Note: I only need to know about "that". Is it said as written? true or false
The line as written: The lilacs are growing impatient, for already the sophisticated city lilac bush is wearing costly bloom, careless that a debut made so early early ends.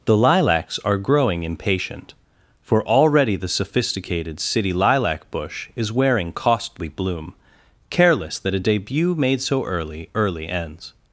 true